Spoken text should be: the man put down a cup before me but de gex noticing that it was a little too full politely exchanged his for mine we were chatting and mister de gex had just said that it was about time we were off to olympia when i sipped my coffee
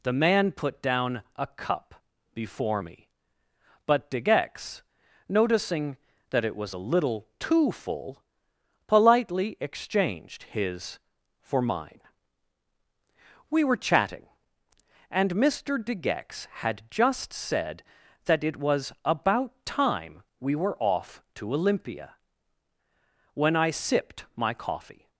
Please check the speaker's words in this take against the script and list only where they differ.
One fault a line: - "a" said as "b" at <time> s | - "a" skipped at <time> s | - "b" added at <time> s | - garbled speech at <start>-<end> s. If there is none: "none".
none